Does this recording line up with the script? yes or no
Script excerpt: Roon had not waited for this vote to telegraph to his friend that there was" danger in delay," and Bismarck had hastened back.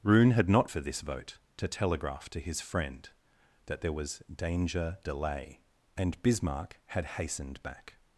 no